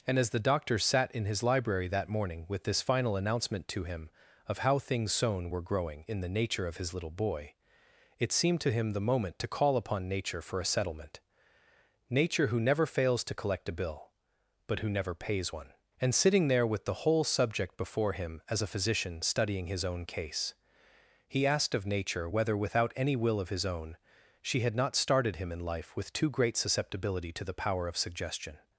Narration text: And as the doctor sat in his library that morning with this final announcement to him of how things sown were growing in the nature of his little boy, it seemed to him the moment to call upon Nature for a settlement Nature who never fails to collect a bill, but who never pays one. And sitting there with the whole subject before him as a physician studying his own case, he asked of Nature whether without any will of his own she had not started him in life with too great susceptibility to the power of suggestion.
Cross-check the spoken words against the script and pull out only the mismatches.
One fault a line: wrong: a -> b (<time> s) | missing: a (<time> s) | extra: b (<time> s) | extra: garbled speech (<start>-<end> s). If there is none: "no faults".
no faults